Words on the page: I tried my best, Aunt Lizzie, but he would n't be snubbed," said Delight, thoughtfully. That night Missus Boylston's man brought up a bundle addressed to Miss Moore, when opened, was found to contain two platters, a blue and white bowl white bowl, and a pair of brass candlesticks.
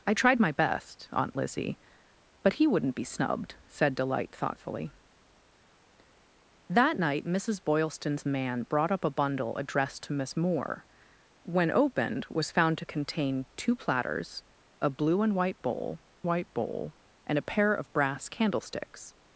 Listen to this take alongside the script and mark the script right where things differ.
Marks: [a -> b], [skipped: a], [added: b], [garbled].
I tried my best, Aunt Lizzie, but he would n't be snubbed," said Delight, thoughtfully. That night Missus Boylston's man brought up a bundle addressed to Miss Moore, when opened, was found to contain two platters, a blue and white bowl white bowl, and a pair of brass candlesticks.